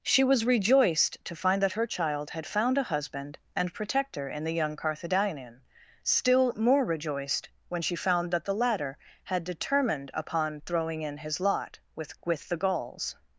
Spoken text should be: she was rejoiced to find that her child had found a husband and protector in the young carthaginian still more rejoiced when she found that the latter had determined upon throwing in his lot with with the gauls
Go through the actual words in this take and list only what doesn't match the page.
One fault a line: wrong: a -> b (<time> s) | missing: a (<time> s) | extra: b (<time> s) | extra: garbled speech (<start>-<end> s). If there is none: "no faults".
no faults